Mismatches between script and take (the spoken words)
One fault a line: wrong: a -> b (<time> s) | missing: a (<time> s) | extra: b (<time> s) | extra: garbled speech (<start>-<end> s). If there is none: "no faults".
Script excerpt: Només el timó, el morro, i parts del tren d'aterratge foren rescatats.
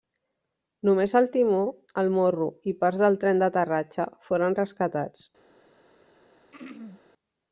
no faults